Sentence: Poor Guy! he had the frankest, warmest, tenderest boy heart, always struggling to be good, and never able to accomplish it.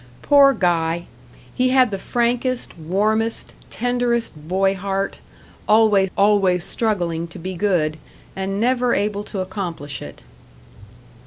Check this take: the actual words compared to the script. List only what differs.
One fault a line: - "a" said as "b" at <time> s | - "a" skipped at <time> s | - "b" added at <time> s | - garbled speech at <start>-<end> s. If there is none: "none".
- "always" added at 6.2 s